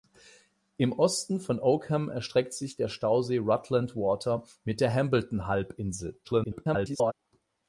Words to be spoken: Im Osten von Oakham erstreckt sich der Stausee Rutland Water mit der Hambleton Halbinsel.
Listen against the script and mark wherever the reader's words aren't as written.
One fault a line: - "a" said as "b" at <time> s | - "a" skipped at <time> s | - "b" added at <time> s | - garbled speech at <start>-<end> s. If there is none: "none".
- garbled speech at 6.2-7.1 s